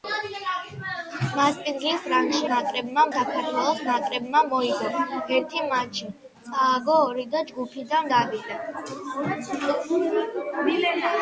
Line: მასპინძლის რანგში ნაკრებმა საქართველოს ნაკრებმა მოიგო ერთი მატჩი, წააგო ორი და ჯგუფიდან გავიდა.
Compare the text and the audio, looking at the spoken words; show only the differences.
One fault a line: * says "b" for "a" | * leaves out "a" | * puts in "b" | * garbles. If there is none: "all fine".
all fine